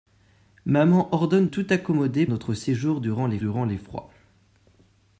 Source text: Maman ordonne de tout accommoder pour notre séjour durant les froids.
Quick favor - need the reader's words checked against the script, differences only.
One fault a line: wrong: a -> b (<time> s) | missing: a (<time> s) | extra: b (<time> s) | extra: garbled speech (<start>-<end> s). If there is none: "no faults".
missing: de (1.5 s)
missing: pour (2.3 s)
extra: durant les (3.4 s)